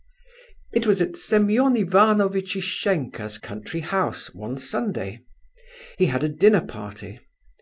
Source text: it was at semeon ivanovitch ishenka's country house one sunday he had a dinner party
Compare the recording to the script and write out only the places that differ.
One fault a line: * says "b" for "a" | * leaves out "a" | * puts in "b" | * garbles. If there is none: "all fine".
all fine